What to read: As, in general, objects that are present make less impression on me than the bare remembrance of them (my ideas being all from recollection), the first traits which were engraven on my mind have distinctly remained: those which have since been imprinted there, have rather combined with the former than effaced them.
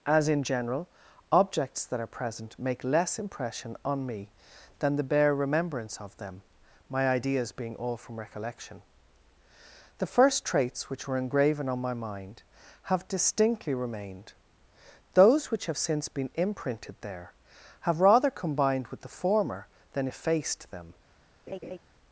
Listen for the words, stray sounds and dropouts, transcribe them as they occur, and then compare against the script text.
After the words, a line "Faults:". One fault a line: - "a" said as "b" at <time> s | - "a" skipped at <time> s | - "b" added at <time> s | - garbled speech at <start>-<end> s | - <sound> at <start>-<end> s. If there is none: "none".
As, in general, objects that are present make less impression on me than the bare remembrance of them (my ideas being all from recollection), the first traits which were engraven on my mind have distinctly remained: those which have since been imprinted there, have rather combined with the former than effaced them.
Faults:
- laugh at 21.5-21.8 s